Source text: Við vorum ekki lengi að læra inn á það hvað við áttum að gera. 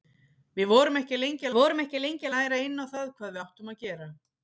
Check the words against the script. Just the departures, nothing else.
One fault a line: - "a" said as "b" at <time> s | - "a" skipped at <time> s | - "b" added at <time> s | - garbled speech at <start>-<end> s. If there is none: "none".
- "vorum ekki lengi" added at 1.6 s